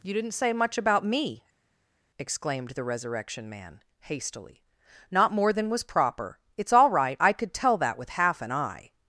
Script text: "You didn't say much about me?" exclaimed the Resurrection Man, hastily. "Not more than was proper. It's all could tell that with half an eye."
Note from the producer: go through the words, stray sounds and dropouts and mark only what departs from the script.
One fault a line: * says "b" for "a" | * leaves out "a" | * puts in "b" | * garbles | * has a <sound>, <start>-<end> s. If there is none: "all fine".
* puts in "right I"